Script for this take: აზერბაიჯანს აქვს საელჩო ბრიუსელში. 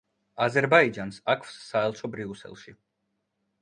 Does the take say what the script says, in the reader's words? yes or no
yes